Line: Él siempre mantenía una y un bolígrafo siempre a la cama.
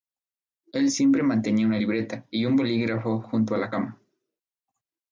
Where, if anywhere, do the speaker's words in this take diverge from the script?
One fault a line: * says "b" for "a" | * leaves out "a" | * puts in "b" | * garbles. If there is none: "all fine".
* puts in "libreta"
* says "junto" for "siempre"